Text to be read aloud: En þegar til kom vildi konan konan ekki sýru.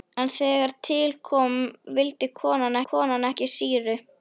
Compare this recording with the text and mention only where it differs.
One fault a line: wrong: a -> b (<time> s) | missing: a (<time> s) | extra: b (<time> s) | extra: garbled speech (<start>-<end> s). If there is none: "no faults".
no faults